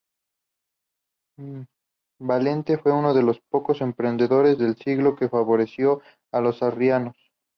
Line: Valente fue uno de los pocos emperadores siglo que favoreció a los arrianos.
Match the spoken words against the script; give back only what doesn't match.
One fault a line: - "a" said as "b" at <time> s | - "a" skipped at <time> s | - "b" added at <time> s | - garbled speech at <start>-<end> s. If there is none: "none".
- "del" added at 4.6 s